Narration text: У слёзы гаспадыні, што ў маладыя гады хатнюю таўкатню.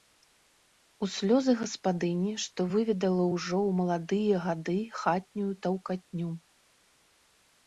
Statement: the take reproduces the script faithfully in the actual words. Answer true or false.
false